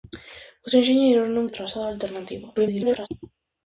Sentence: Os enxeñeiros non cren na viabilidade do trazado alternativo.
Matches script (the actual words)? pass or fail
fail